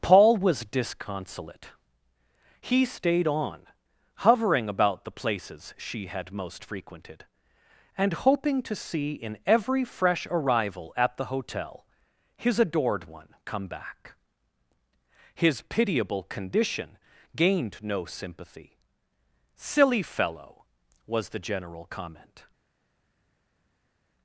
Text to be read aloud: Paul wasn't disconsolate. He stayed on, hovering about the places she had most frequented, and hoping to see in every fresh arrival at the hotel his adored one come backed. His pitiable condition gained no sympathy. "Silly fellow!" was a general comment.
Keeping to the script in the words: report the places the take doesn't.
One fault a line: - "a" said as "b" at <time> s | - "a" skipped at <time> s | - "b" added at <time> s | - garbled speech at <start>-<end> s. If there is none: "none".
- "wasn't" said as "was" at 0.3 s
- "backed" said as "back" at 13.7 s
- "a" said as "the" at 21.3 s